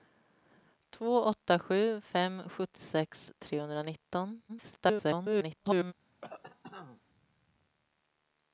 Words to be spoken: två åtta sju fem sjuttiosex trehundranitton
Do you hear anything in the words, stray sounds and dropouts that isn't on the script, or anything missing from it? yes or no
yes